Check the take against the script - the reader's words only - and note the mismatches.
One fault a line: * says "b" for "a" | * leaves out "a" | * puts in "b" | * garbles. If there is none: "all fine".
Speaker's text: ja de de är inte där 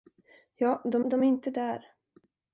all fine